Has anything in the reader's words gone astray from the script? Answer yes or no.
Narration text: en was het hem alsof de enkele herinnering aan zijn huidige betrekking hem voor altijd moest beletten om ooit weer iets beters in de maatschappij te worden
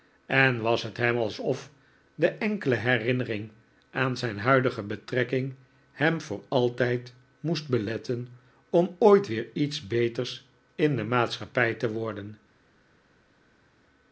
no